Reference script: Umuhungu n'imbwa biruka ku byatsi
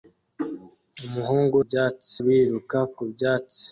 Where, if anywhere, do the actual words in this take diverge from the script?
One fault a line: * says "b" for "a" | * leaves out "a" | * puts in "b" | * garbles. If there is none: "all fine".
* says "byatsi" for "n'imbwa"